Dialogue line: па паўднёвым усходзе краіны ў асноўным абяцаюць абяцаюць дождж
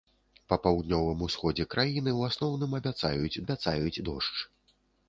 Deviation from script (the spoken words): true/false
false